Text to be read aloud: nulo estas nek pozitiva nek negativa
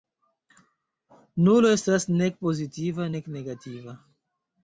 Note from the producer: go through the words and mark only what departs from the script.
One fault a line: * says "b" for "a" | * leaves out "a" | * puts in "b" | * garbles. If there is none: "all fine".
all fine